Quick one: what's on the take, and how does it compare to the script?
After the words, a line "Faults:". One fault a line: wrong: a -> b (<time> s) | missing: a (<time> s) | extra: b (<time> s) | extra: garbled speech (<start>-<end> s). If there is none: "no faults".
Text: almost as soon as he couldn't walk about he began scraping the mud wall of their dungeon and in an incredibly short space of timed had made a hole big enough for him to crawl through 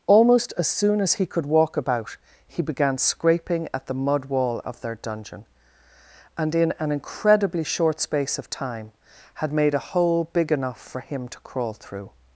almost as soon as he could walk about he began scraping at the mud wall of their dungeon and in an incredibly short space of time had made a hole big enough for him to crawl through
Faults:
wrong: couldn't -> could (1.2 s)
extra: at (3.7 s)
wrong: timed -> time (8.5 s)